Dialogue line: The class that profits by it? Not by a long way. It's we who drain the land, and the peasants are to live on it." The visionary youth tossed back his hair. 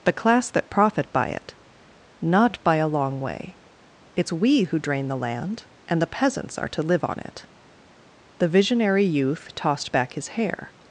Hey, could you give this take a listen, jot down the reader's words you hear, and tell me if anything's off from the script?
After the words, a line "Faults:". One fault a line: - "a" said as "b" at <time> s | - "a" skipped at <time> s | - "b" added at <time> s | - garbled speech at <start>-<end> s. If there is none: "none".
The class that profit by it? Not by a long way. It's we who drain the land, and the peasants are to live on it." The visionary youth tossed back his hair.
Faults:
- "profits" said as "profit" at 0.7 s